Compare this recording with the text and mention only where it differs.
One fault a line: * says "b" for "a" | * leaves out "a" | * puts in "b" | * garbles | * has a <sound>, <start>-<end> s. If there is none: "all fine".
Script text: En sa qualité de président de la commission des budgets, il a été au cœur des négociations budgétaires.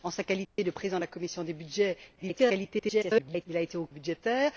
* has a dropout, 0.4-0.6 s
* garbles
* leaves out "cœur des négociations"